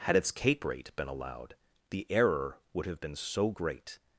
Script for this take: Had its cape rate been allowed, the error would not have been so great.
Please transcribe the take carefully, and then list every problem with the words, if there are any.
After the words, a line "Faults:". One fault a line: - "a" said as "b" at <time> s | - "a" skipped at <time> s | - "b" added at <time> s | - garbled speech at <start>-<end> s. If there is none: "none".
Had its cape rate been allowed, the error would have been so great.
Faults:
- "not" skipped at 2.9 s